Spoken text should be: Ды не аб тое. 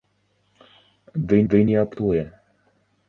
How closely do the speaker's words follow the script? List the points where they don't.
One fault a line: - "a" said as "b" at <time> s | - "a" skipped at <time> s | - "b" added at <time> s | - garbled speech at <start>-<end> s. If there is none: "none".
- "ды" added at 1.5 s